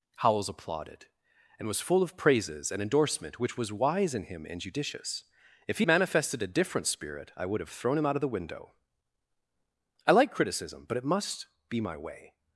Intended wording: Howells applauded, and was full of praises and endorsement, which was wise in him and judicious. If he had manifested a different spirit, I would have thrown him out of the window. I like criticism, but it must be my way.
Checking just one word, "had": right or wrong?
wrong